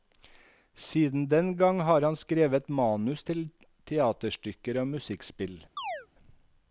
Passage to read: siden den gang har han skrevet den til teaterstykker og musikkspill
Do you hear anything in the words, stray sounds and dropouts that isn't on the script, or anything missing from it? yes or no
yes